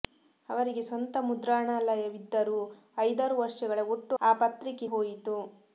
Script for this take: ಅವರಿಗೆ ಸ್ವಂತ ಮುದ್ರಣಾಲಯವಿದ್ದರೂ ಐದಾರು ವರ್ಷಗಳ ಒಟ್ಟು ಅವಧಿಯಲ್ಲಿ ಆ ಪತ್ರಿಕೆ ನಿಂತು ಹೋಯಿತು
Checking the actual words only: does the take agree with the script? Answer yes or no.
no